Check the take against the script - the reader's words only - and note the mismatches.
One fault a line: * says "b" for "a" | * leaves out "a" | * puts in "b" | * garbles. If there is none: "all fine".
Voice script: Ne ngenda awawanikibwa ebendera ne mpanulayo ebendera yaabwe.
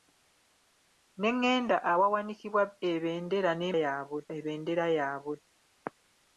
* says "yaabwe" for "mpanulayo"